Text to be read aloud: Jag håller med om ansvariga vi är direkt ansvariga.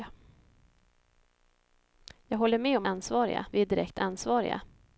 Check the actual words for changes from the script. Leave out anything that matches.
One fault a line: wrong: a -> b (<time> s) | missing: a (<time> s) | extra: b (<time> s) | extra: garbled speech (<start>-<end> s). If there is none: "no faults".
no faults